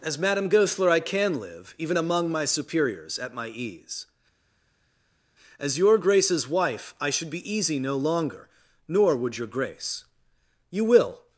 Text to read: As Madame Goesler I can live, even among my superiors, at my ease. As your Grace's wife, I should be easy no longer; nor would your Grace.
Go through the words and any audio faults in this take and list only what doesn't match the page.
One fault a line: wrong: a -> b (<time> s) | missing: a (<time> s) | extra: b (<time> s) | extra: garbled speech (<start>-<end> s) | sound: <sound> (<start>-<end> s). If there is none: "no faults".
extra: You will (10.7 s)